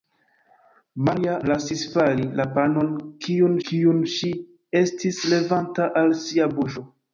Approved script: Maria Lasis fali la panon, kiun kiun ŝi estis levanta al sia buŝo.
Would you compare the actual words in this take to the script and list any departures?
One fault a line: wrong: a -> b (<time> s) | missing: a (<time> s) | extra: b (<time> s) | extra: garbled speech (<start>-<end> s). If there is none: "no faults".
no faults